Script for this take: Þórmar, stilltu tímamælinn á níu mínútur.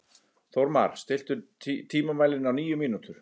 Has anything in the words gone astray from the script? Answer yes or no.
no